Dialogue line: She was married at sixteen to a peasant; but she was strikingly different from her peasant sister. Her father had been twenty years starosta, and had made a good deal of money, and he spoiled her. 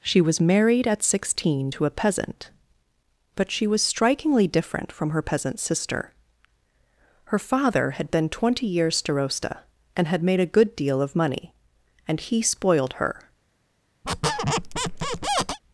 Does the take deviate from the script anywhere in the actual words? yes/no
no